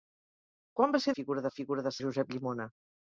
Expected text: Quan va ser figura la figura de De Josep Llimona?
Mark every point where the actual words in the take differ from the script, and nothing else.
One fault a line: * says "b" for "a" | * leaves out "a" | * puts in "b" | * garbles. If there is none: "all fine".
all fine